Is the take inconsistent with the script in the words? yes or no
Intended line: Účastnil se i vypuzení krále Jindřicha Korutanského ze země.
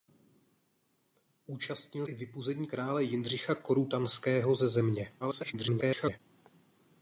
yes